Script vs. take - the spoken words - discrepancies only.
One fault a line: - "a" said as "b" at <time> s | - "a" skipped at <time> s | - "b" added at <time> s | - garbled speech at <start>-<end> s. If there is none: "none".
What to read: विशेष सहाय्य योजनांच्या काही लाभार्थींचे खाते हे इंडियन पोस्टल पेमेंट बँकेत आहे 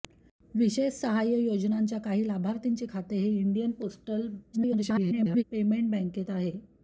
- garbled speech at 4.5-5.4 s